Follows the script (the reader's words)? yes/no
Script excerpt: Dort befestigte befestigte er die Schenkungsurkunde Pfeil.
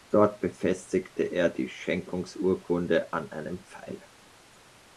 no